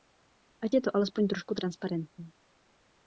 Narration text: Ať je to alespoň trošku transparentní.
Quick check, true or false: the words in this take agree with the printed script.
true